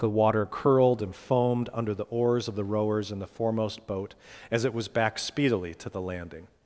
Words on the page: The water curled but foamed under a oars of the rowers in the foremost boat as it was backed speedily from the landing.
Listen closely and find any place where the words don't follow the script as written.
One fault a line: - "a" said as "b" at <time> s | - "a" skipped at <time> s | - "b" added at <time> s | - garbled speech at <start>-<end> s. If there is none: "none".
- "but" said as "and" at 1.0 s
- "a" said as "the" at 1.9 s
- "from" said as "to" at 5.8 s